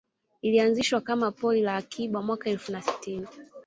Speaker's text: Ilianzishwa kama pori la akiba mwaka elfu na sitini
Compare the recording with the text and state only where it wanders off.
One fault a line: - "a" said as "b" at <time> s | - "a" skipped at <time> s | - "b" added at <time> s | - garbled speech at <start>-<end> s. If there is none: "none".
none